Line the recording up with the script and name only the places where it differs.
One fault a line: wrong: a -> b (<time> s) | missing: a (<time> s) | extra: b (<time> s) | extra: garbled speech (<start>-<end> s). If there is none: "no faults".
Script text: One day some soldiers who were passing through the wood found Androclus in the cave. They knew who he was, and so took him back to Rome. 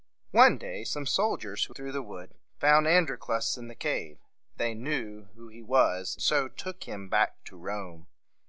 missing: were passing (1.8 s)
missing: and (6.2 s)